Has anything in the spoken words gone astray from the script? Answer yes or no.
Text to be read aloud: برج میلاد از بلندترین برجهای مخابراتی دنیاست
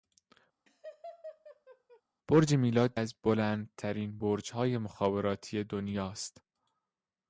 no